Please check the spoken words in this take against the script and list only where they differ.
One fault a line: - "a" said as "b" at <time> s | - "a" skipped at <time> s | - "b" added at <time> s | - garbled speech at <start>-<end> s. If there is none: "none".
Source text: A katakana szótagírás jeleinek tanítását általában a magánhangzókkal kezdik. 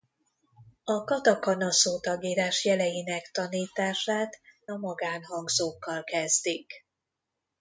- "általában" skipped at 4.4 s